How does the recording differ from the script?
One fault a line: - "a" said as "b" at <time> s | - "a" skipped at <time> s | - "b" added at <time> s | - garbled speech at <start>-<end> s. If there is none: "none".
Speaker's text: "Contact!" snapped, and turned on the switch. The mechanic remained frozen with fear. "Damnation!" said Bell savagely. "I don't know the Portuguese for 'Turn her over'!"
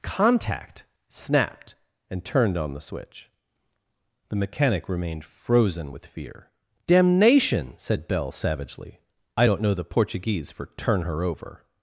none